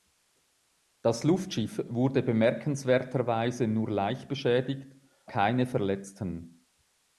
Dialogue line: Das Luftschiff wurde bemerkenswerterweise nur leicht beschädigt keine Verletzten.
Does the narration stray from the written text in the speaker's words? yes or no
no